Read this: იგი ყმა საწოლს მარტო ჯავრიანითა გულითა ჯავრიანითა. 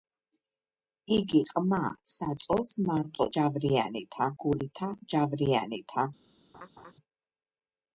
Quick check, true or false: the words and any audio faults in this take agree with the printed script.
false